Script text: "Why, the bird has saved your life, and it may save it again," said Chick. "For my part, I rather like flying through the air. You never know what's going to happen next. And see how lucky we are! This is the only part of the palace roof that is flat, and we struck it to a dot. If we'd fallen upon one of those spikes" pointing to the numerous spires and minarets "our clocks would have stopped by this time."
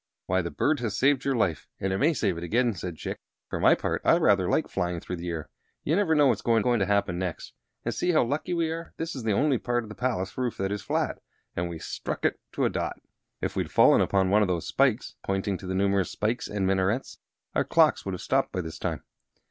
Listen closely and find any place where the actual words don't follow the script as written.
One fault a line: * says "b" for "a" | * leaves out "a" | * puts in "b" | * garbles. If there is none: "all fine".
* puts in "going"